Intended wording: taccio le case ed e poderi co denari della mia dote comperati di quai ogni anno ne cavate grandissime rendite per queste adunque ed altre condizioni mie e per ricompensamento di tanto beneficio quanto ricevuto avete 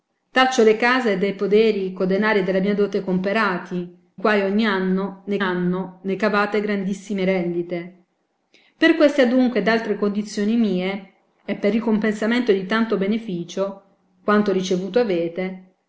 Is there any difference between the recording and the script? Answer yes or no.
yes